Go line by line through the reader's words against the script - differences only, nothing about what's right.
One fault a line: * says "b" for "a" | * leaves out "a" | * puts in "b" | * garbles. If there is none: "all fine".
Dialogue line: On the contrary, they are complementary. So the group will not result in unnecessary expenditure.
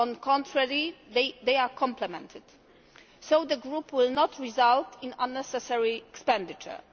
all fine